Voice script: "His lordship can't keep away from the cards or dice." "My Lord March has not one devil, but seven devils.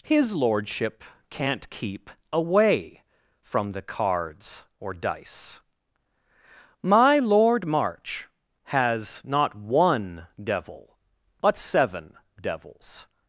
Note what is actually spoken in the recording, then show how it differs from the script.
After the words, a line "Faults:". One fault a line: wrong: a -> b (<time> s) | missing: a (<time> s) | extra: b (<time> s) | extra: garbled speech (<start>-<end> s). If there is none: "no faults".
"His lordship can't keep away from the cards or dice." "My Lord March has not one devil, but seven devils.
Faults:
no faults